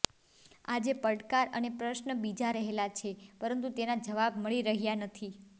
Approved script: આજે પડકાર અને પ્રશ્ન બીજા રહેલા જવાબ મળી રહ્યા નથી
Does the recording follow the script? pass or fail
fail